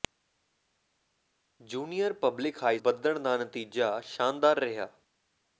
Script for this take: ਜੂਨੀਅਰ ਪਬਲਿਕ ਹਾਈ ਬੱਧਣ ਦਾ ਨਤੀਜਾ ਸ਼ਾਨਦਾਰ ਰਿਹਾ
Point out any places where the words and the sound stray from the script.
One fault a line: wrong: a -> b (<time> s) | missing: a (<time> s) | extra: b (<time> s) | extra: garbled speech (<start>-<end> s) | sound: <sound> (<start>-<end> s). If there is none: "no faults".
no faults